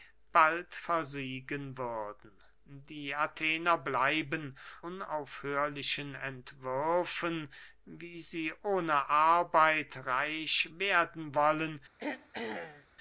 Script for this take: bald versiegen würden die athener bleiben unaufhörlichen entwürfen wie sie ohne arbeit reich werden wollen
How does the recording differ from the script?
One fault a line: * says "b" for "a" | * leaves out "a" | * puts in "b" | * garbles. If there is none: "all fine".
all fine